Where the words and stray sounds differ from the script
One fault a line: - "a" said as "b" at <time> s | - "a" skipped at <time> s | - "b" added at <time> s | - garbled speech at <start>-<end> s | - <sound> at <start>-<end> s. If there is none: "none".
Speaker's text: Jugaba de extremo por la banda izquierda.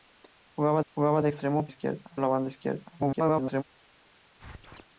- "jugaba" added at 0.9 s
- "por" said as "izquierda" at 1.7 s
- garbled speech at 3.0-3.6 s
- squeak at 4.4-4.8 s